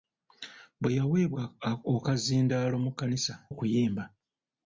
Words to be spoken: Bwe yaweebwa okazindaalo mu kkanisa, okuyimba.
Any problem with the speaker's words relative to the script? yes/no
no